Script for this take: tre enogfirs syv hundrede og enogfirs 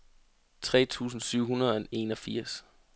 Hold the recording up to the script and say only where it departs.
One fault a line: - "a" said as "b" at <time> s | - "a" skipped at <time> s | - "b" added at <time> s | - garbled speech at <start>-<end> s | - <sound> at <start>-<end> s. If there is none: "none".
- "enogfirs" said as "tusind" at 0.8 s